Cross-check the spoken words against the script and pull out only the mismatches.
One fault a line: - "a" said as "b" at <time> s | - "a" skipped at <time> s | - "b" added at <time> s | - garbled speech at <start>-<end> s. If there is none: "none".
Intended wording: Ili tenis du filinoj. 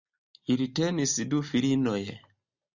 none